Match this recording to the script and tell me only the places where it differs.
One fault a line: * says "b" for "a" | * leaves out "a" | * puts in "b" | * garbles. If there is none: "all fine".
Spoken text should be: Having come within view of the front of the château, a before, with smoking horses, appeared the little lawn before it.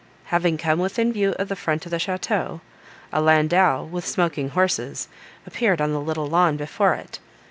* says "landau" for "before"
* puts in "on"